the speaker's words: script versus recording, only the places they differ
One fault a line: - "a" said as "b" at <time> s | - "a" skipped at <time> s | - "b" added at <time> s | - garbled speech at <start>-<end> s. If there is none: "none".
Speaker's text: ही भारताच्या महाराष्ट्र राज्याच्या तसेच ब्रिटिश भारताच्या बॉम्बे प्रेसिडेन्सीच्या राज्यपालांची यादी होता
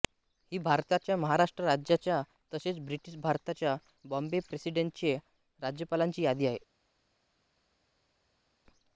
- "होता" said as "आहे" at 6.5 s